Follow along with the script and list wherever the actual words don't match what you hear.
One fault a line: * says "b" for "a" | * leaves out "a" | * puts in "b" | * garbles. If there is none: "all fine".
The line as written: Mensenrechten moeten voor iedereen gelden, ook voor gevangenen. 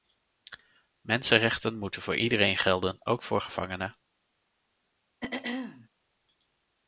all fine